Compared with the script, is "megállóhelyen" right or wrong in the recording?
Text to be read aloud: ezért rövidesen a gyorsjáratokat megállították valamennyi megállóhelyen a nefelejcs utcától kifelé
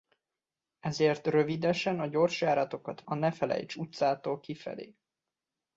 wrong